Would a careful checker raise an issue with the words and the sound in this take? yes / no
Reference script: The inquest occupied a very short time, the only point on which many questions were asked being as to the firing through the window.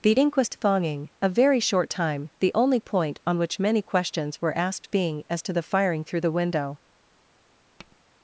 yes